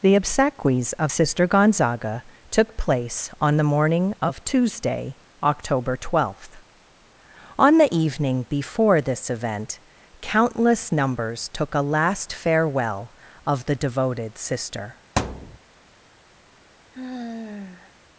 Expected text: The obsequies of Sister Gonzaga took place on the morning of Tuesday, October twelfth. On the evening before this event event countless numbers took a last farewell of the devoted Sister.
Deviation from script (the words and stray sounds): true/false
true